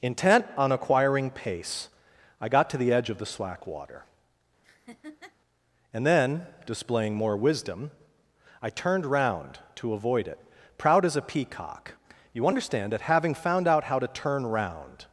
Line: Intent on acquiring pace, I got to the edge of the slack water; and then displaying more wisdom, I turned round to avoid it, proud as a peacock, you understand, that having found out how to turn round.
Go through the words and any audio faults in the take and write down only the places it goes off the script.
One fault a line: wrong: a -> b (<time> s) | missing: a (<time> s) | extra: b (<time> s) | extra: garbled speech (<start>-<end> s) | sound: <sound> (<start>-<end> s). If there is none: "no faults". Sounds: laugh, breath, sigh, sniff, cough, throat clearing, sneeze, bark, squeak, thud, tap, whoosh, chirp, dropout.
sound: laugh (4.6-5.4 s)